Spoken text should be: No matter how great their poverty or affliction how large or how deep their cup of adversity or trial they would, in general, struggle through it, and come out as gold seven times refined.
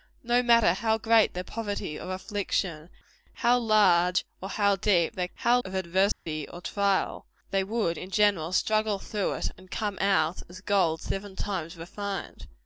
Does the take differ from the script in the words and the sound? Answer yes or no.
yes